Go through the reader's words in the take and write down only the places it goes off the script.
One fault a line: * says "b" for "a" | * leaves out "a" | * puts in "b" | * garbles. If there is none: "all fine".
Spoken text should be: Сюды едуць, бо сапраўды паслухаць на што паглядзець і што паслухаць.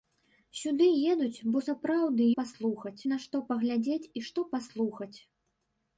all fine